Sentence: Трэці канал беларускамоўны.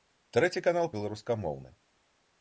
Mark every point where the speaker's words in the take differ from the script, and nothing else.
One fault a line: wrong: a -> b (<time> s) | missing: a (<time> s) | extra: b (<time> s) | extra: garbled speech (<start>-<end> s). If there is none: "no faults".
no faults